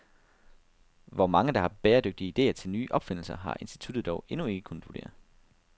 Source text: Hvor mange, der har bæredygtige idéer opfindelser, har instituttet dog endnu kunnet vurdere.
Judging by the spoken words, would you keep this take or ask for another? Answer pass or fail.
fail